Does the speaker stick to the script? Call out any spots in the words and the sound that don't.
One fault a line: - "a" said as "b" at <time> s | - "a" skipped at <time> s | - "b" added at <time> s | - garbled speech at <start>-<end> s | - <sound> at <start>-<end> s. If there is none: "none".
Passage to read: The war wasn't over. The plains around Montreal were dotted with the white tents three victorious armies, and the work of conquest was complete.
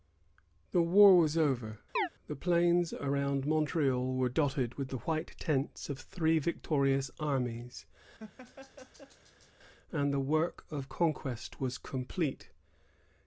- "wasn't" said as "was" at 1.1 s
- chirp at 2.0-2.1 s
- "of" added at 5.9 s
- laugh at 8.2-9.5 s